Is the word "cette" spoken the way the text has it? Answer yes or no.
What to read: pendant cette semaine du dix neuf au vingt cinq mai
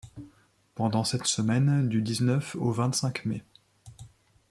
yes